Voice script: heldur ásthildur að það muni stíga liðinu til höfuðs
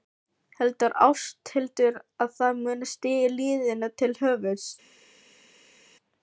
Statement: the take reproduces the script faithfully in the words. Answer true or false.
true